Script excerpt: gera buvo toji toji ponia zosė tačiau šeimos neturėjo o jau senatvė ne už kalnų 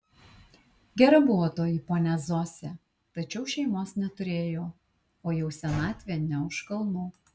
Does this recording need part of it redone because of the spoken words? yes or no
yes